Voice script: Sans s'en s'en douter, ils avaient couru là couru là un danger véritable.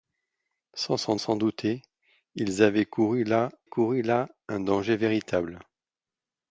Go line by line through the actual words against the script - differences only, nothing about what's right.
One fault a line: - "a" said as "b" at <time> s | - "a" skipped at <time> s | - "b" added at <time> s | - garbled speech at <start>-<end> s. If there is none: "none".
none